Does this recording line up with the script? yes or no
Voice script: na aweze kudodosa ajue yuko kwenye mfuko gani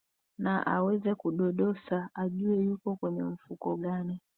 yes